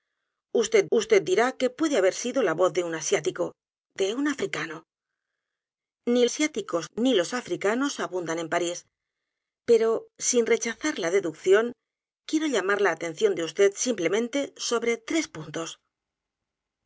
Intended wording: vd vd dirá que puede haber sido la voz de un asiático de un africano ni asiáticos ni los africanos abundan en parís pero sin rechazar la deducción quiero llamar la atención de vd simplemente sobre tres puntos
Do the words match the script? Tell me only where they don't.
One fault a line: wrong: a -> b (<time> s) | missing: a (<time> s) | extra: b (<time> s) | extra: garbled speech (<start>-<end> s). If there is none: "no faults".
no faults